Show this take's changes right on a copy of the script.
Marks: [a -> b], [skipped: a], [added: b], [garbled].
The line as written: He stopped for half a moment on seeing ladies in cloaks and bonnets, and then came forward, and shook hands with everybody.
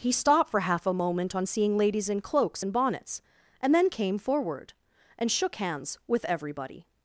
He stopped for half a moment on seeing ladies in cloaks and bonnets, and then came forward, and shook hands with everybody.